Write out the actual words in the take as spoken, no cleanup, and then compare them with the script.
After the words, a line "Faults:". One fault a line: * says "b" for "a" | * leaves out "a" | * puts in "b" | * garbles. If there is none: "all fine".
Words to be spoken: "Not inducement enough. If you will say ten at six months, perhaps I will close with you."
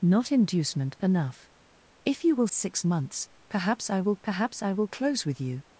"Not inducement enough. If you will six months, perhaps I will perhaps I will close with you."
Faults:
* says "six months perhaps I will" for "say ten at six months"